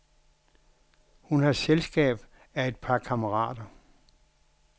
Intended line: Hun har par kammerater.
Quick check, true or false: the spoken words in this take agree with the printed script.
false